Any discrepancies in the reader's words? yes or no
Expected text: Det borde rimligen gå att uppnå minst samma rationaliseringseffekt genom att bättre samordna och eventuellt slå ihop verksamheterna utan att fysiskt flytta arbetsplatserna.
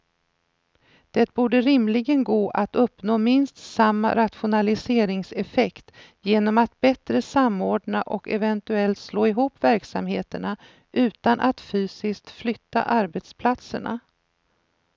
no